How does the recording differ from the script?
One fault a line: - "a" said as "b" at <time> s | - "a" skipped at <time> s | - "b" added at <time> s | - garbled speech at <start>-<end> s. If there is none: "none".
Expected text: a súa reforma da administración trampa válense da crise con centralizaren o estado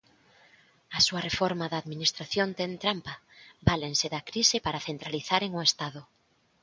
- "ten" added at 2.6 s
- "con" said as "para" at 4.6 s